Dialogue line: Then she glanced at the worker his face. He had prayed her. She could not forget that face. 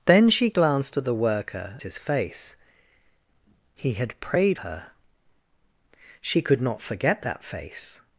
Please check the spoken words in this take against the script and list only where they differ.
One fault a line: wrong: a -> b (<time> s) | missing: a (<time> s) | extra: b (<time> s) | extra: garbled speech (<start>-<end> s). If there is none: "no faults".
no faults